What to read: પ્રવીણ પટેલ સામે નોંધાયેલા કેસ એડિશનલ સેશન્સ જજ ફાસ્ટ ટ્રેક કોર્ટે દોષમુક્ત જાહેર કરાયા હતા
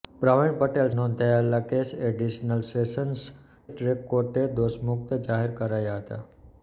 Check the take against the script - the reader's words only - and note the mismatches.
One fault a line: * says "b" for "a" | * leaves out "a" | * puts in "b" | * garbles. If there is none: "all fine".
* leaves out "સામે"
* leaves out "જજ ફાસ્ટ"